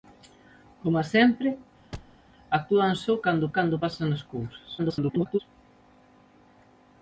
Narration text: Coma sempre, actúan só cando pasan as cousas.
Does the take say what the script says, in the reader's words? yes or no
no